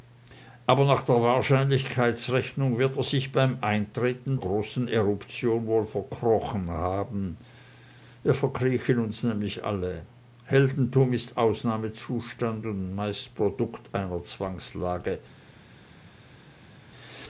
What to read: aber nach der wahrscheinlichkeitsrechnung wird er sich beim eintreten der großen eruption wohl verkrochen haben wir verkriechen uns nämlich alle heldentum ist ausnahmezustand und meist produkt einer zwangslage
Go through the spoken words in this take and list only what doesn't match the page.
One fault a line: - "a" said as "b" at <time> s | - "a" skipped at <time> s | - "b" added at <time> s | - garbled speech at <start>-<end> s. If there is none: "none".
- "der" skipped at 4.3 s